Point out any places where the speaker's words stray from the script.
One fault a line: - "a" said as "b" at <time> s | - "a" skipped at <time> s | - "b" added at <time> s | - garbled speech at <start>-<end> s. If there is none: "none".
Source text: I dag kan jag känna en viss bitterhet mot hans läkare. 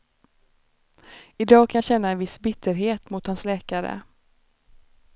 none